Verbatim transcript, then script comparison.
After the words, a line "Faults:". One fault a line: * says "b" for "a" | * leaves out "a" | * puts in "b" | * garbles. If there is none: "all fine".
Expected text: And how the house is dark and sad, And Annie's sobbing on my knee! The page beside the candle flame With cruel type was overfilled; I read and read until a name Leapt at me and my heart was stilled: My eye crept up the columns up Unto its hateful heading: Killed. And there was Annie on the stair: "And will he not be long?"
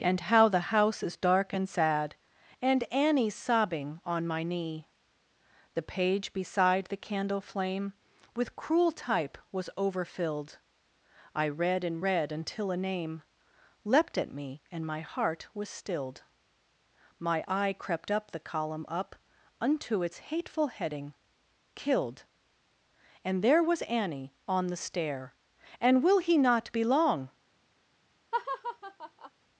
And how the house is dark and sad, And Annie's sobbing on my knee! The page beside the candle flame With cruel type was overfilled; I read and read until a name Leapt at me and my heart was stilled: My eye crept up the column up Unto its hateful heading: Killed. And there was Annie on the stair: "And will he not be long?"
Faults:
* says "column" for "columns"